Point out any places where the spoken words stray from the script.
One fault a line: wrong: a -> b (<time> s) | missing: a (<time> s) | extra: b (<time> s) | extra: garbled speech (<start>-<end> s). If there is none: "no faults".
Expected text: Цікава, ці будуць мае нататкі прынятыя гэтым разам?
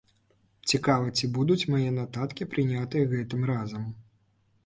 no faults